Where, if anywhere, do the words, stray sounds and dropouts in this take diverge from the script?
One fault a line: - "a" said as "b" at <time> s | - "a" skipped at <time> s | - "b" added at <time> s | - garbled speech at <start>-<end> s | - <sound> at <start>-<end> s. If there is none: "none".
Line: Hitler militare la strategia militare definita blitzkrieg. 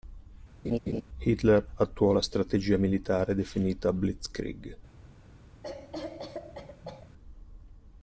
- laugh at 0.6-1.0 s
- "militare" said as "attuò" at 1.8 s
- cough at 5.6-7.1 s